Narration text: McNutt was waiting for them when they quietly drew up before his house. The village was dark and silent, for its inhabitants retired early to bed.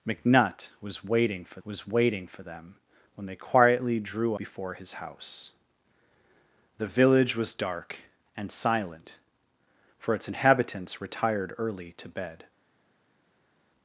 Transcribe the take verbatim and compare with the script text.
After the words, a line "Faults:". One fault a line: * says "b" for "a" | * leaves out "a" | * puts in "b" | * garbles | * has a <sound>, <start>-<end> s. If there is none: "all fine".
McNutt was waiting for was waiting for them when they quietly drew before his house. The village was dark and silent, for its inhabitants retired early to bed.
Faults:
* puts in "was waiting for"
* leaves out "up"